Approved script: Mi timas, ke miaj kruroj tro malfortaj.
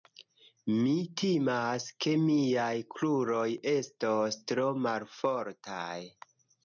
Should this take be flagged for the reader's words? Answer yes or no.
yes